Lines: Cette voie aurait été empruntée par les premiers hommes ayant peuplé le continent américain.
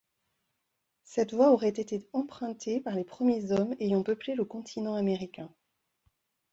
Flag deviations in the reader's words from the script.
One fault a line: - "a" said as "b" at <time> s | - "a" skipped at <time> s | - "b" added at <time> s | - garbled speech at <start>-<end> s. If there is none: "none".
none